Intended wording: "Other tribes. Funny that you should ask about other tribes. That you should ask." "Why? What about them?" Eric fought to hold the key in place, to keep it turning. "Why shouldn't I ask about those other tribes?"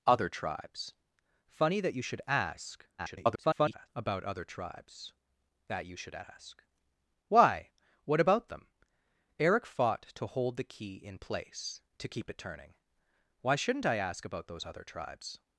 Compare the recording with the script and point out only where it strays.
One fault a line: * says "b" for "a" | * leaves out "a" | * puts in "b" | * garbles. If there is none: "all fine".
* garbles